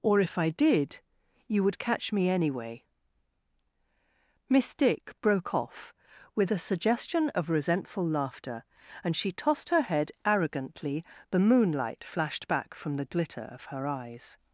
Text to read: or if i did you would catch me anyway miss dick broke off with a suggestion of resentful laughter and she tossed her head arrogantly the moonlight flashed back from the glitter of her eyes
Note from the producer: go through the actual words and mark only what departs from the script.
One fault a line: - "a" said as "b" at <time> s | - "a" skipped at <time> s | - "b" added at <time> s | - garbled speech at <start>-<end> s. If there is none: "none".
none